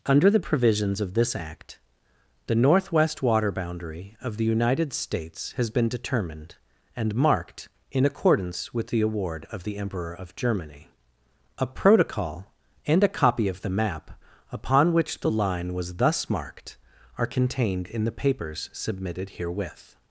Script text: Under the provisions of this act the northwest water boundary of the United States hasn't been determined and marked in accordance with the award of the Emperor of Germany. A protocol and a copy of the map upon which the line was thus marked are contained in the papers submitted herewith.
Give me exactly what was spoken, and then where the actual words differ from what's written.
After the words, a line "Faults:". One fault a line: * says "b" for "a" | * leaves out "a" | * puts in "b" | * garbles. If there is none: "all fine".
Under the provisions of this act the northwest water boundary of the United States has been determined and marked in accordance with the award of the Emperor of Germany. A protocol and a copy of the map upon which the line was thus marked are contained in the papers submitted herewith.
Faults:
* says "has" for "hasn't"